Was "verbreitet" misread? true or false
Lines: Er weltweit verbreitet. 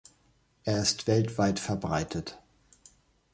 false